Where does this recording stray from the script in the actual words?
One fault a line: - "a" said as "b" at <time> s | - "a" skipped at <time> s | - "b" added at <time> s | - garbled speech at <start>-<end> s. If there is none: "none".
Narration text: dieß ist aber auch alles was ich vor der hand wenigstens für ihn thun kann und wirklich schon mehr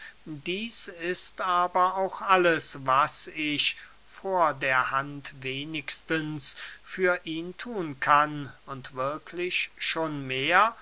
none